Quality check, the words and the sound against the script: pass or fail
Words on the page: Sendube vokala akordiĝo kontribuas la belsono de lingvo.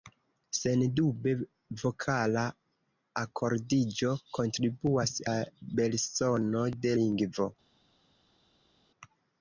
pass